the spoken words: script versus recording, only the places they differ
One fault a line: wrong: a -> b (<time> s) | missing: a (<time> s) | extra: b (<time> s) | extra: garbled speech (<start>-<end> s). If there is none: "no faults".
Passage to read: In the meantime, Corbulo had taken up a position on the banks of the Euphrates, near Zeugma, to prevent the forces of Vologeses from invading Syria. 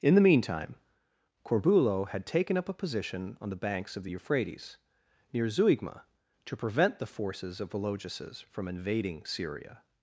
no faults